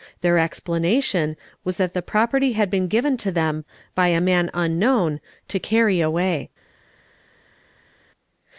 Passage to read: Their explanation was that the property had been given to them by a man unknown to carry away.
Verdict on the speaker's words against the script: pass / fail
pass